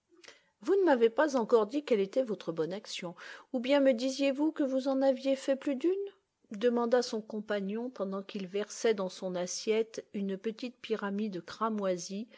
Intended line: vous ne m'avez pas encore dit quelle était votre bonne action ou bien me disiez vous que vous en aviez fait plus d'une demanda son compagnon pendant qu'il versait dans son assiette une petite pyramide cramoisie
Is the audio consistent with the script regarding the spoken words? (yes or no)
yes